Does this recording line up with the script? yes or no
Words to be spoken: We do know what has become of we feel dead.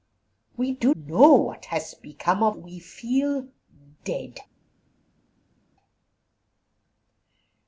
yes